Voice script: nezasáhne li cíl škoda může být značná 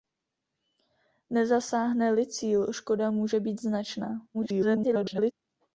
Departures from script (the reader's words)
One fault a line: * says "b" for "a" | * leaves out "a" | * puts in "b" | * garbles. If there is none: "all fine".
* garbles